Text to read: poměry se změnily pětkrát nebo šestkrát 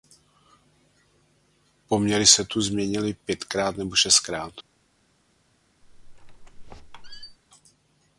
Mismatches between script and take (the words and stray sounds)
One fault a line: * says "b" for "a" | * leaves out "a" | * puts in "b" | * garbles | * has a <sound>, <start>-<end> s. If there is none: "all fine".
* puts in "tu"
* has a squeak, 5.8-7.4 s